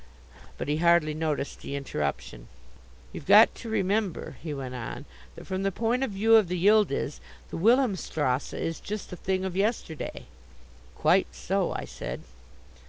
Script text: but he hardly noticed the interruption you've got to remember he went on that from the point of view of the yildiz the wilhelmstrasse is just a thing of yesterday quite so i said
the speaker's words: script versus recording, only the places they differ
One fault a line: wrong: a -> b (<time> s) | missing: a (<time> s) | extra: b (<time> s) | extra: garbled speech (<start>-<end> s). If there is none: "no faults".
no faults